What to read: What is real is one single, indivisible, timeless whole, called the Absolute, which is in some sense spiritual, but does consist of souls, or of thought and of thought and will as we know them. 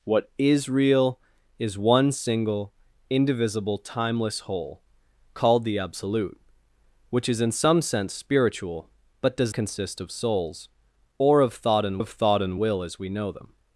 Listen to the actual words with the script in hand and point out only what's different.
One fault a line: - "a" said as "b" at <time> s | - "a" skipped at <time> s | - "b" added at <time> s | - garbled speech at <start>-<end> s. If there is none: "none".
none